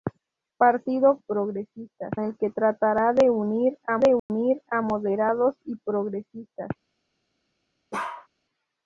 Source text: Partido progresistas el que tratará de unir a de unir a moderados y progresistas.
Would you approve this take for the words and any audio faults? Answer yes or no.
no